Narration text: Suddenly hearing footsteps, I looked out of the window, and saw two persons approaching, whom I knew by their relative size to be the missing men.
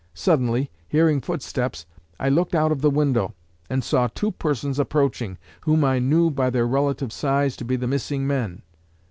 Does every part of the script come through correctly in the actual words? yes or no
yes